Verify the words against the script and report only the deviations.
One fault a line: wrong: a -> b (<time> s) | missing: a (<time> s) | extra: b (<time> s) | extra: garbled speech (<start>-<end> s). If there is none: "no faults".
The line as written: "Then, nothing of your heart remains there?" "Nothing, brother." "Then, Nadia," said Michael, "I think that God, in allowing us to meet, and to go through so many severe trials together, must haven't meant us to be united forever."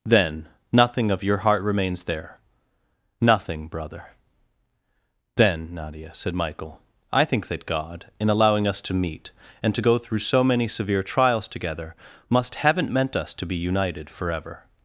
no faults